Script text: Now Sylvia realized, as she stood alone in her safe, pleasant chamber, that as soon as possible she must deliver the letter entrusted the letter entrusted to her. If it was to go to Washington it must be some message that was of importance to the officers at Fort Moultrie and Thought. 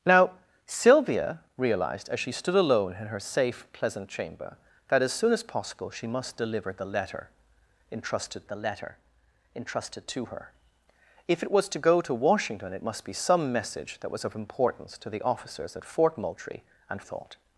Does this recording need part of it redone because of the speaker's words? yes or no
no